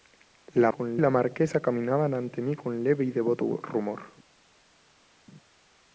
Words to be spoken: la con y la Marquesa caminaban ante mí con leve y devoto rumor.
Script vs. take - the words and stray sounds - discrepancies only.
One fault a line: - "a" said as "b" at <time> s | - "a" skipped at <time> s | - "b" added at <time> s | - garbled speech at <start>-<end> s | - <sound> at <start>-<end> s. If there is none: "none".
none